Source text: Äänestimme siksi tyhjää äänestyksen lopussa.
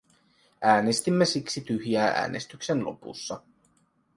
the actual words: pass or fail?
pass